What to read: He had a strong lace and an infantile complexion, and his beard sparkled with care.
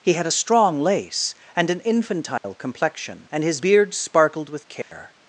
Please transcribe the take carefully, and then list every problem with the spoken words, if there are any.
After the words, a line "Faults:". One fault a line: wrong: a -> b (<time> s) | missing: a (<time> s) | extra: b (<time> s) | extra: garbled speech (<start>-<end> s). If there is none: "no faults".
He had a strong lace and an infantile complexion, and his beard sparkled with care.
Faults:
no faults